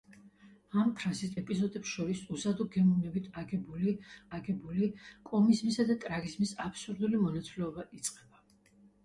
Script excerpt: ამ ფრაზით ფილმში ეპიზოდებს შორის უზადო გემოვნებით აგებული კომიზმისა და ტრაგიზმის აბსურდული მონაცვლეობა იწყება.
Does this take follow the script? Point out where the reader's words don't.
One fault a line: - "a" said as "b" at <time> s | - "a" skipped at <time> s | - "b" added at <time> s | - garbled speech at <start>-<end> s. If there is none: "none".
- "ფილმში" skipped at 1.4 s
- "აგებული" added at 4.4 s